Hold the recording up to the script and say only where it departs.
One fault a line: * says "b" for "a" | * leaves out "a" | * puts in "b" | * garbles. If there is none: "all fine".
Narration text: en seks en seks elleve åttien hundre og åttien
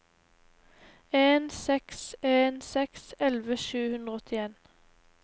* says "sju" for "åttien"